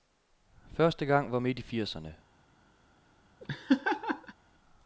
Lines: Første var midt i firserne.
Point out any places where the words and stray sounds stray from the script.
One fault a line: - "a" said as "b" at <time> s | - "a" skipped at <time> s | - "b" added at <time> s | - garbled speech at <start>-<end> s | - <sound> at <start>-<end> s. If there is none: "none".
- "gang" added at 1.1 s
- laugh at 3.4-4.3 s